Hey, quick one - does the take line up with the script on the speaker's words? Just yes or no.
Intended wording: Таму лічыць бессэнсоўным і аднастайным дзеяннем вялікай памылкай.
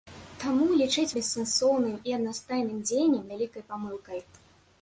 yes